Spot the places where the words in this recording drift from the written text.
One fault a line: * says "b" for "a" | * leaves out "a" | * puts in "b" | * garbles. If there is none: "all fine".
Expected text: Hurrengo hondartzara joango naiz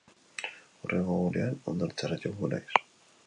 * puts in "egunean"